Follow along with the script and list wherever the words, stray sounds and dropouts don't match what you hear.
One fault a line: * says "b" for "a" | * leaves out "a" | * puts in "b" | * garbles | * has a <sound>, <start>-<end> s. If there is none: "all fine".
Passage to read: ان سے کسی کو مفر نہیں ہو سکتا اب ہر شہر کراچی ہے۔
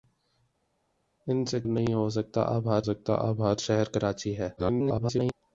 * says "نہیں ہو سکتا اب ہر" for "کسی کو مفر نہیں ہو"
* garbles